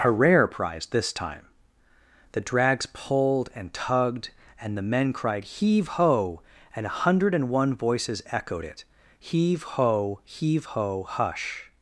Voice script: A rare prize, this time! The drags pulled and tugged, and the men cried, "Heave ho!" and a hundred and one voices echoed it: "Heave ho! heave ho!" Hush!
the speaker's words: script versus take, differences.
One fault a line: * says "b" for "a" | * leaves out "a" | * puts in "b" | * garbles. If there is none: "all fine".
all fine